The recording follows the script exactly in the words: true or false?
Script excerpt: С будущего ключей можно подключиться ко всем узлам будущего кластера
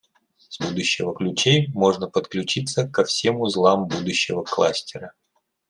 true